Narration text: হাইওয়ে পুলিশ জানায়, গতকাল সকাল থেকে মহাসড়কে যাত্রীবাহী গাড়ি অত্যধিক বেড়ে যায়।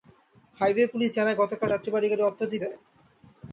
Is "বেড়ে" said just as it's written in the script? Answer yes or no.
no